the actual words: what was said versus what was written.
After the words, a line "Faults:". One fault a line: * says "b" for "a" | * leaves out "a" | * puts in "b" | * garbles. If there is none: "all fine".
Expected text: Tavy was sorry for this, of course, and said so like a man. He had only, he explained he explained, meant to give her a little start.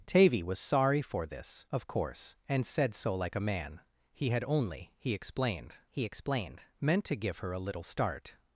Tavy was sorry for this, of course, and said so like a man. He had only, he explained he explained, meant to give her a little start.
Faults:
all fine